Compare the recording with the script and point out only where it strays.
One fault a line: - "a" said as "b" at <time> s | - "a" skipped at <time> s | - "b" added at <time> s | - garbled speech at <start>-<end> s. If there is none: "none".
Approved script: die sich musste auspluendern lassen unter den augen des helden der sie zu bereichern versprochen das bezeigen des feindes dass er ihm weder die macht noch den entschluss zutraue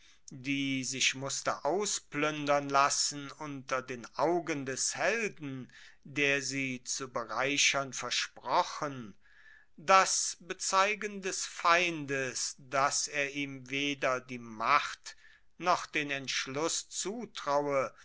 none